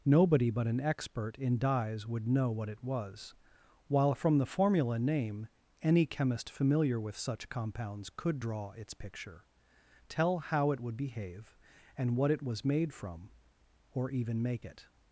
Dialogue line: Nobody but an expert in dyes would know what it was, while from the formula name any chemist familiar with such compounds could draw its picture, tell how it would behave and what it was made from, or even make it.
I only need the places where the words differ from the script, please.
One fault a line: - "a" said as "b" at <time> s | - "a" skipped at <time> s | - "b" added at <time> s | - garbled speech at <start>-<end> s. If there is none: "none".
none